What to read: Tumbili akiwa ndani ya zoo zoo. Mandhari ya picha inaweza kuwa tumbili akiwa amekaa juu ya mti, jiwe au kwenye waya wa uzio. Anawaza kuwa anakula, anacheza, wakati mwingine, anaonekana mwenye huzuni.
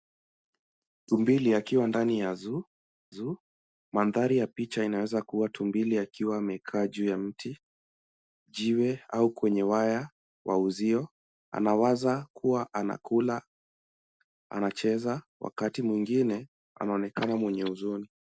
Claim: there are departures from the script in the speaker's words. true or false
false